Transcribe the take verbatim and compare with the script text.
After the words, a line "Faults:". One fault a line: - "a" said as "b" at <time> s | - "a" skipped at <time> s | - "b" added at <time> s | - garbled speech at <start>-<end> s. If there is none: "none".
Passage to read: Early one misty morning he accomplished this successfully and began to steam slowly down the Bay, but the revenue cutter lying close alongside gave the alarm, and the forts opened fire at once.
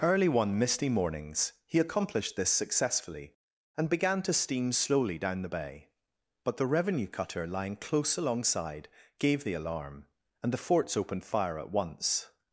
Early one misty mornings he accomplished this successfully and began to steam slowly down the Bay, but the revenue cutter lying close alongside gave the alarm, and the forts opened fire at once.
Faults:
- "morning" said as "mornings" at 0.9 s